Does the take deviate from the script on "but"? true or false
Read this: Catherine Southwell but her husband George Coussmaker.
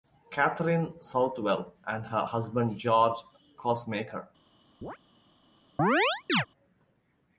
true